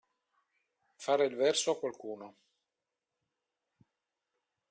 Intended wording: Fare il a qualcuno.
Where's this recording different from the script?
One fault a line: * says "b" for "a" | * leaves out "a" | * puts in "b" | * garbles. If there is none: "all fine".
* puts in "verso"